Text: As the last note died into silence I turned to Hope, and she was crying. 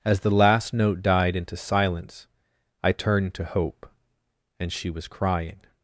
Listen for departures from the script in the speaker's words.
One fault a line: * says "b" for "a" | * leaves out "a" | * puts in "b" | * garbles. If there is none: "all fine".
all fine